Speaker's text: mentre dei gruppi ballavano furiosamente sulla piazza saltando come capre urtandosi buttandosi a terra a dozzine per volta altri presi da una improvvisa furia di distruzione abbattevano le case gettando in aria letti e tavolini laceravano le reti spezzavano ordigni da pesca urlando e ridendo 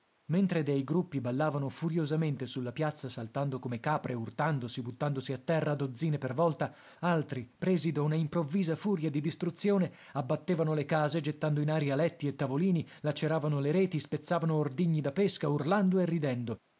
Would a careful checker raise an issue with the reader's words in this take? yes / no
no